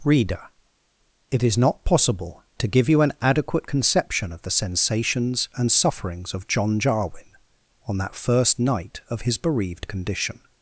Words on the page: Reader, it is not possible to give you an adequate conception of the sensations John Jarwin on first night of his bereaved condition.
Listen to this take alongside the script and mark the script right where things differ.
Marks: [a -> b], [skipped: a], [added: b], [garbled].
Reader, it is not possible to give you an adequate conception of the sensations [added: and sufferings of] John Jarwin on [added: that] first night of his bereaved condition.